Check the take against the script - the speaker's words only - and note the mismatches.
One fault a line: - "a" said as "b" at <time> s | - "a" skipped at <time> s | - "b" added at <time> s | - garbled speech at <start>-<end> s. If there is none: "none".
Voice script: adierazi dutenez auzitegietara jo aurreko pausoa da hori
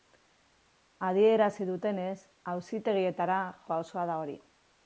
- "jo aurreko" skipped at 3.4 s